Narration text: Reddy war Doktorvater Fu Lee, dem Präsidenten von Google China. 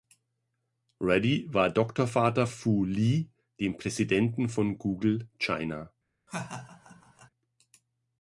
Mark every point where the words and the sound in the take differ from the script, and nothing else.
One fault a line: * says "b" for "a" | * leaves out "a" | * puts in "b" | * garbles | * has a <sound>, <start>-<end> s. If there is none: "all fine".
* has a laugh, 6.3-7.3 s